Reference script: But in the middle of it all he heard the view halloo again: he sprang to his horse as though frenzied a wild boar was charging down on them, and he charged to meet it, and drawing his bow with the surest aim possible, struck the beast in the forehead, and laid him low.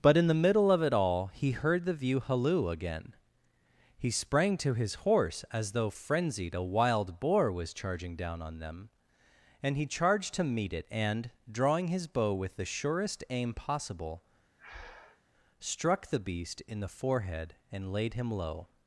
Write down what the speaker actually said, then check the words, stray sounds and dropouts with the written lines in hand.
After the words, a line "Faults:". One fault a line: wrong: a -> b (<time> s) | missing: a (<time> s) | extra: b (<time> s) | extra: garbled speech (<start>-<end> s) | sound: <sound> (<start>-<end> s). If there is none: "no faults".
But in the middle of it all he heard the view halloo again: he sprang to his horse as though frenzied a wild boar was charging down on them, and he charged to meet it, and drawing his bow with the surest aim possible, struck the beast in the forehead, and laid him low.
Faults:
sound: breath (14.6-15.2 s)